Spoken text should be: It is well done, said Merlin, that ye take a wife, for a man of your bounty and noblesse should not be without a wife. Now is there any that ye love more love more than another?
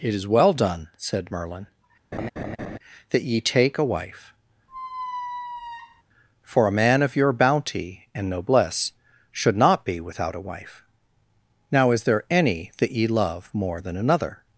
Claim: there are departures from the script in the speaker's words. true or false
true